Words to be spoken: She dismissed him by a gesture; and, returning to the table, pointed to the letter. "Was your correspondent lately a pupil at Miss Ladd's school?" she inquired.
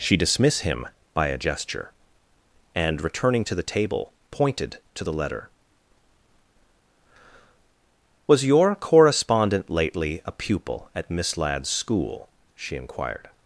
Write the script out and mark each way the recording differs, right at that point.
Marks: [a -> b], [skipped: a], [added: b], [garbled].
She [dismissed -> dismiss] him by a gesture; and, returning to the table, pointed to the letter. "Was your correspondent lately a pupil at Miss Ladd's school?" she inquired.